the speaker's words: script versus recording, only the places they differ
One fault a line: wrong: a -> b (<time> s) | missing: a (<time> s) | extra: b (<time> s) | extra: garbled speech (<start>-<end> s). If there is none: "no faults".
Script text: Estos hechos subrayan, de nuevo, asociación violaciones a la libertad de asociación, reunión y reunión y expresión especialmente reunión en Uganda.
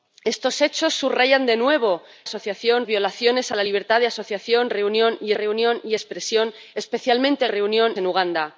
no faults